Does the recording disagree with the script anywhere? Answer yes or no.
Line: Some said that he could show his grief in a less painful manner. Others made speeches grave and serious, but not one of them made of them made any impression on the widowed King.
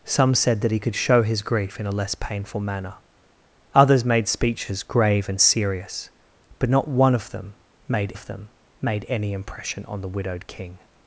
no